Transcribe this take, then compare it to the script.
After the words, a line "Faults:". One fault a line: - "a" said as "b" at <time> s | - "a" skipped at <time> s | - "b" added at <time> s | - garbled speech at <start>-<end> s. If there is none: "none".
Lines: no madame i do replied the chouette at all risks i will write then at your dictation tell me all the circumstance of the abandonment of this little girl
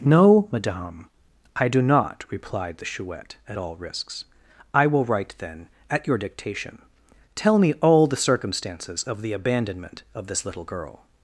no madame i do not replied the chouette at all risks i will write then at your dictation tell me all the circumstances of the abandonment of this little girl
Faults:
- "not" added at 1.8 s
- "circumstance" said as "circumstances" at 8.2 s